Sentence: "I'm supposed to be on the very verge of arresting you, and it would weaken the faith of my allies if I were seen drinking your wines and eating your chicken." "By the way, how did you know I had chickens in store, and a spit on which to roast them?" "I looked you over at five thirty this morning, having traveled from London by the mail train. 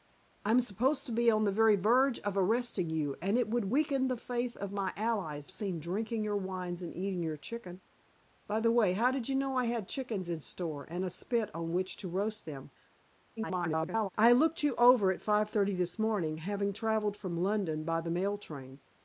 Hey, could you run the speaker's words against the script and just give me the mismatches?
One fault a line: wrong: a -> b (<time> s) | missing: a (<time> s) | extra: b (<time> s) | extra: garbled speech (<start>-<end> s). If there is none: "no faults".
missing: if I were (5.5 s)
extra: garbled speech (13.4-14.1 s)